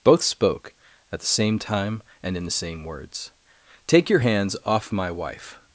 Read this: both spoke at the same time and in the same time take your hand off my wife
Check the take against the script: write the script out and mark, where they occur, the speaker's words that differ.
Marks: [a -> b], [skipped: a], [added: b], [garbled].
both spoke at the same time and in the same [time -> words] take your [hand -> hands] off my wife